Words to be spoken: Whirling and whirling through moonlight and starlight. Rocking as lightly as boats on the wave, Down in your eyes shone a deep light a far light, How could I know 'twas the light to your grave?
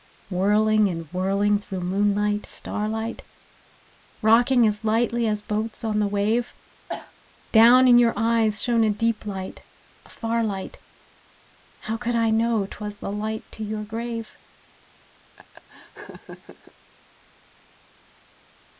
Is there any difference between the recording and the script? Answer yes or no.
yes